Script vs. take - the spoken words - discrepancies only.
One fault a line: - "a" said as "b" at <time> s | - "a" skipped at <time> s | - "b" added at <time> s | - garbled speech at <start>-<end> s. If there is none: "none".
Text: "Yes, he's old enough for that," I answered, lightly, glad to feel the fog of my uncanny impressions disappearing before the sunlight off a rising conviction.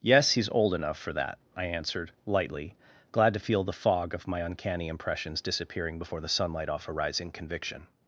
none